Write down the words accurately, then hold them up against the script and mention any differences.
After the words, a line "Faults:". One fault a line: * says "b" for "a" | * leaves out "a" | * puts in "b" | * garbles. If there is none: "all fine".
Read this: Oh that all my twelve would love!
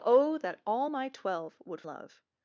Oh that all my twelve would love!
Faults:
all fine